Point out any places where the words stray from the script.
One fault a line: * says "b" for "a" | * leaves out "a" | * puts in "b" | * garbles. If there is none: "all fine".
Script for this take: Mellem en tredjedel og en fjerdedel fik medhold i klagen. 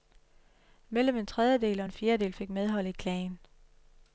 all fine